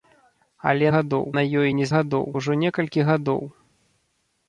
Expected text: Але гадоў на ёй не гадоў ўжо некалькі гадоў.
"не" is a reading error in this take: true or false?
false